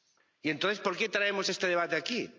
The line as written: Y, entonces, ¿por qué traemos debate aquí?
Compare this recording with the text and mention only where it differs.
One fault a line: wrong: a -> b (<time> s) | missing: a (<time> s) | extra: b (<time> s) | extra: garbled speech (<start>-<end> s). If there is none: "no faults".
extra: este (1.5 s)